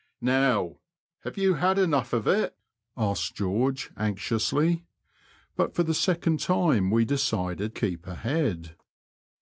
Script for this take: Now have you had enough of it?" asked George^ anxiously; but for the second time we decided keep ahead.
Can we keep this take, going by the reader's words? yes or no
yes